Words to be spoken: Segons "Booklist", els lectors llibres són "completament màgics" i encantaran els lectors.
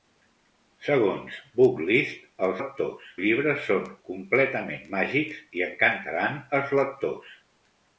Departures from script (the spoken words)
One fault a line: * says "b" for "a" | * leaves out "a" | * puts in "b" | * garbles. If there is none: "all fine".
all fine